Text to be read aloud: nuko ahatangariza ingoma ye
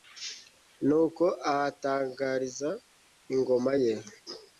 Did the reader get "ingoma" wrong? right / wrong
right